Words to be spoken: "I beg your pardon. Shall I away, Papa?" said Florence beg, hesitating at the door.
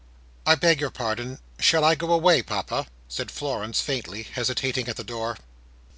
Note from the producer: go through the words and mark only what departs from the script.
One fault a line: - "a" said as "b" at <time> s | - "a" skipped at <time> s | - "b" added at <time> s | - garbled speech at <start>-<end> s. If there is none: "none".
- "go" added at 1.9 s
- "beg" said as "faintly" at 3.8 s